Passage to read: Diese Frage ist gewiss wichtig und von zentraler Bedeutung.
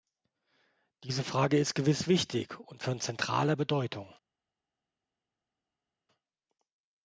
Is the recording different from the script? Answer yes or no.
no